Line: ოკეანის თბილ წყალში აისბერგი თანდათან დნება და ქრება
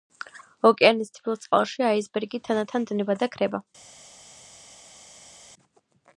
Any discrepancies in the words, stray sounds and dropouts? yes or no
no